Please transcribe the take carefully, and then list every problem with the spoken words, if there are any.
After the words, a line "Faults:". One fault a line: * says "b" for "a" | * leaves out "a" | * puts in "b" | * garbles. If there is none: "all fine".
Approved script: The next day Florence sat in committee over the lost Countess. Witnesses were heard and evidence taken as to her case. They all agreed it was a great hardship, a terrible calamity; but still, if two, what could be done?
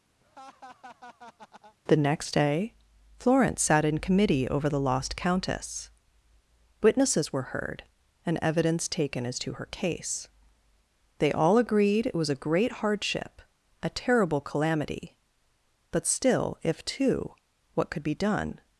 The next day Florence sat in committee over the lost Countess. Witnesses were heard and evidence taken as to her case. They all agreed it was a great hardship, a terrible calamity; but still, if two, what could be done?
Faults:
all fine